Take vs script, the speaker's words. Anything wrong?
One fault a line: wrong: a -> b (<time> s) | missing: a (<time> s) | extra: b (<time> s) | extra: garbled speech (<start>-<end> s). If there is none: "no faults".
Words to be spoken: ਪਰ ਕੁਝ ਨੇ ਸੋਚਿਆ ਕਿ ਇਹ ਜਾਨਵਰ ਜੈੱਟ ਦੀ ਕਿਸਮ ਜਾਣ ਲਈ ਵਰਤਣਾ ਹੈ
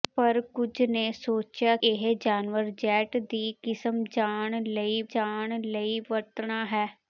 missing: ਕਿ (1.8 s)
extra: ਜਾਣ ਲਈ (5.1 s)